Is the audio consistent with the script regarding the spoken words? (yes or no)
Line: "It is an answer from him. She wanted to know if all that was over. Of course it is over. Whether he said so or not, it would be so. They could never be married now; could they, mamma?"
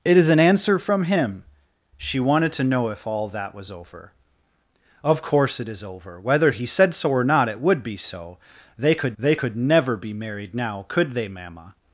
no